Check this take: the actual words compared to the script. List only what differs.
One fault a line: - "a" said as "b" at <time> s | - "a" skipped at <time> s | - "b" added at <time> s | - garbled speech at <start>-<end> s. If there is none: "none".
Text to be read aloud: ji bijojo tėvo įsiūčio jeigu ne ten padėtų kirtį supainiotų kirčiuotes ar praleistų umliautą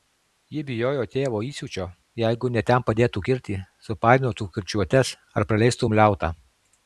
none